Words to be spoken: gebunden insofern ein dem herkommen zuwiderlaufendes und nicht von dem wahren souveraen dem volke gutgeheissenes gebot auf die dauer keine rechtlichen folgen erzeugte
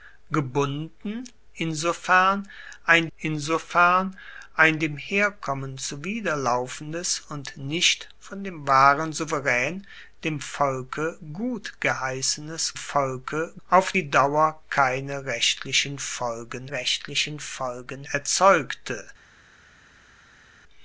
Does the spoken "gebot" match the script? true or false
false